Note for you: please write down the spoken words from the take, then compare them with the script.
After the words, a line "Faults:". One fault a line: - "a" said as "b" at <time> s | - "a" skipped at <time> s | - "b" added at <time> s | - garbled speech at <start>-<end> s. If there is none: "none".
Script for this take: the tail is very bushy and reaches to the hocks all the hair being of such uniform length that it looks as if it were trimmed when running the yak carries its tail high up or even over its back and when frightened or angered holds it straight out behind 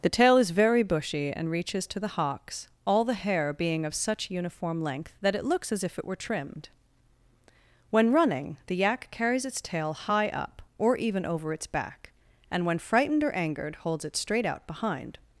the tail is very bushy and reaches to the hocks all the hair being of such uniform length that it looks as if it were trimmed when running the yak carries its tail high up or even over its back and when frightened or angered holds it straight out behind
Faults:
none